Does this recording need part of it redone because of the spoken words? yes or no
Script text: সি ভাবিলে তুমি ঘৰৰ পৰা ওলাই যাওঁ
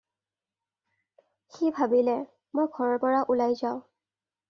yes